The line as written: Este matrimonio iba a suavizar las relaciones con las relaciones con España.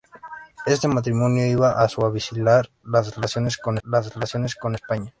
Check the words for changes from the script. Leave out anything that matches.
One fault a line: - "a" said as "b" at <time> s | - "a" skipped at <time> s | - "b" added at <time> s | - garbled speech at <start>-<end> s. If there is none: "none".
none